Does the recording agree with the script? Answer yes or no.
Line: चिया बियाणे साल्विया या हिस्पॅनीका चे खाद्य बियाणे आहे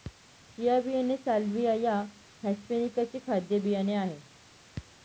yes